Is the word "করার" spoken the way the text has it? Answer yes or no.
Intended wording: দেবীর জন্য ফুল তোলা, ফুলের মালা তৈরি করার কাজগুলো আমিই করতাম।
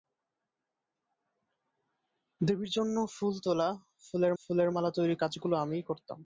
no